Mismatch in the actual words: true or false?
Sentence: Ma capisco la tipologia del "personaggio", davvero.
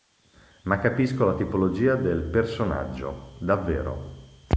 false